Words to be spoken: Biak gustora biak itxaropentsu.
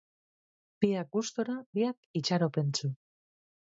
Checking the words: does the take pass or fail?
pass